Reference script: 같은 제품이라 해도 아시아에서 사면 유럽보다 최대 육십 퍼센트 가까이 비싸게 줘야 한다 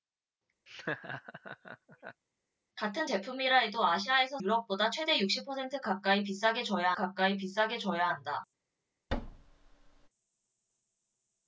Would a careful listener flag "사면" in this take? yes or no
yes